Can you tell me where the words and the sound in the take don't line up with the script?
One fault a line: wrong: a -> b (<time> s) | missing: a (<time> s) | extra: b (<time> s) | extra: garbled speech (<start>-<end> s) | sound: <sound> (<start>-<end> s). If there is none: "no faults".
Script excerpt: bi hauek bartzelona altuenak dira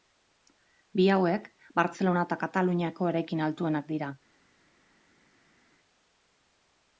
extra: eta kataluniako eraikin (2.3 s)